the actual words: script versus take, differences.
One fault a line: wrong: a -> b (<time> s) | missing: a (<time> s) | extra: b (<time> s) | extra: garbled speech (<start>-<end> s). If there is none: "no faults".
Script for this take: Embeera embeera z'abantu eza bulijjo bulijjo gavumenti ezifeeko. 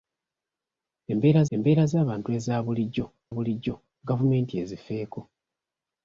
no faults